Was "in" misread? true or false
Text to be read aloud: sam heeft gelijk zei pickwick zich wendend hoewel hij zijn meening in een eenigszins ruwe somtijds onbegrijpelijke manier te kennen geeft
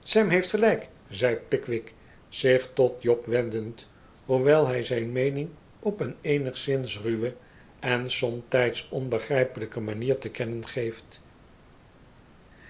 true